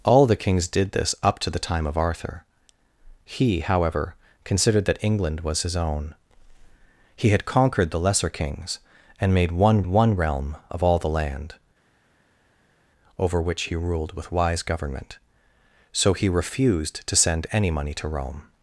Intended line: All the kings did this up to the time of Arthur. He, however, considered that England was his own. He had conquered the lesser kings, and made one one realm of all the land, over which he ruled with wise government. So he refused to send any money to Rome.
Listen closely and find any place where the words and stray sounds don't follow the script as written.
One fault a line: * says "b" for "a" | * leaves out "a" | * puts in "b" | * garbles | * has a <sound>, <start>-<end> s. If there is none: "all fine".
all fine